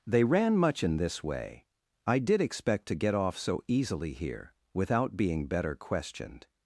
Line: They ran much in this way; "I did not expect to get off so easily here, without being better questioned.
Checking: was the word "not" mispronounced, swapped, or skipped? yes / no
yes